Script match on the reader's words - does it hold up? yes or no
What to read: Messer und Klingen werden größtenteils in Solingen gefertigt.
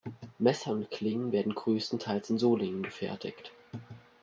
yes